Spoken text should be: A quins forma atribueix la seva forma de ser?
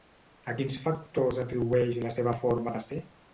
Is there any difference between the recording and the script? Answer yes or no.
yes